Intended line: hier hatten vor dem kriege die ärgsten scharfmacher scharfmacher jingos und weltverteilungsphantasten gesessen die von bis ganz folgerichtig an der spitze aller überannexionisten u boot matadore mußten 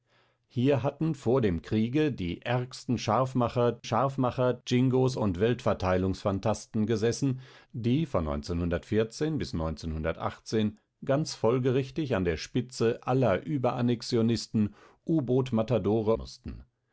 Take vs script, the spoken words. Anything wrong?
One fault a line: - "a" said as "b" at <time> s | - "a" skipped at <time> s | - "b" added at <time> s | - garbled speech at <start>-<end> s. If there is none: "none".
none